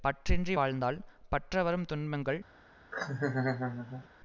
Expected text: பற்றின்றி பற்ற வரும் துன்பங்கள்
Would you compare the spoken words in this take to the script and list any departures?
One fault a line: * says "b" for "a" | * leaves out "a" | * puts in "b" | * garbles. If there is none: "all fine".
* puts in "வாழ்ந்தால்"